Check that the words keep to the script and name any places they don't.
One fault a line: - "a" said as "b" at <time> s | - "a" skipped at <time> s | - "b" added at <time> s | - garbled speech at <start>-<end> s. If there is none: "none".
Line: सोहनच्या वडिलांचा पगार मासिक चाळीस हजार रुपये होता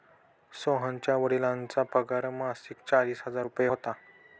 none